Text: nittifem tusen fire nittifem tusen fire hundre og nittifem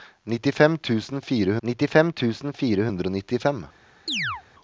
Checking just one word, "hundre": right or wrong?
right